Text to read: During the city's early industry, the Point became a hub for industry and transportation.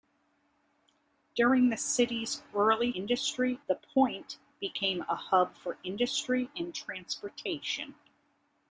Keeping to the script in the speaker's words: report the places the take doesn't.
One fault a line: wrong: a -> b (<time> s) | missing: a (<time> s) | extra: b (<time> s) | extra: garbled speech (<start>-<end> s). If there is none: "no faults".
no faults